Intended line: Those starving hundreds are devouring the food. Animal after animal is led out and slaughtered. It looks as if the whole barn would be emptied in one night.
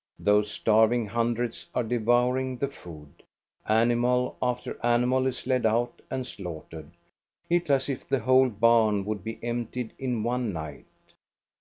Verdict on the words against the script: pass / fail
fail